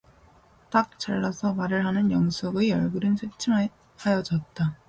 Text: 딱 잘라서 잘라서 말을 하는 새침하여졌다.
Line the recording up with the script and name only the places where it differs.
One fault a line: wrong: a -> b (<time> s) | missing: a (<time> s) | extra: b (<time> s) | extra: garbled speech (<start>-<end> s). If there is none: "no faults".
missing: 잘라서 (1.5 s)
extra: 영숙의 얼굴은 (2.1 s)